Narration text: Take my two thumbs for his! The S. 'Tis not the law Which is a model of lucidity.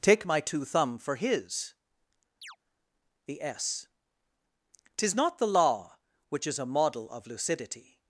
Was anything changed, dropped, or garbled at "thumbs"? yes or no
yes